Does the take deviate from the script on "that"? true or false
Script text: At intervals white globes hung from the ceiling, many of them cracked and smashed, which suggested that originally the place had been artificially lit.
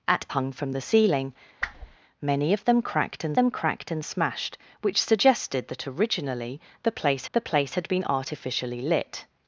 false